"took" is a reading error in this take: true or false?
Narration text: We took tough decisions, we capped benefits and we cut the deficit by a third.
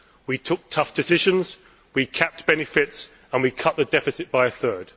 false